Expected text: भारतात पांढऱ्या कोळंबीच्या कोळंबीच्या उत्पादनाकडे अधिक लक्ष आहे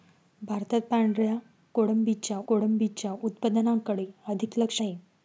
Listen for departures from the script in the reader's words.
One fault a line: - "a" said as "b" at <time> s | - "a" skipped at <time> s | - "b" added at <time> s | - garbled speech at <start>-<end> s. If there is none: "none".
none